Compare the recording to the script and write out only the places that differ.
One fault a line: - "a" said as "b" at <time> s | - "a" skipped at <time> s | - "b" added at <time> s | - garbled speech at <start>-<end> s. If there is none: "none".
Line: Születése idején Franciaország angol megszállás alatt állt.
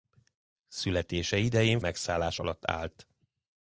- "Franciaország angol" skipped at 1.8 s